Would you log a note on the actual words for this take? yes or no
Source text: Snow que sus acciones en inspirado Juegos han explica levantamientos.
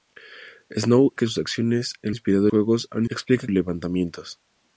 no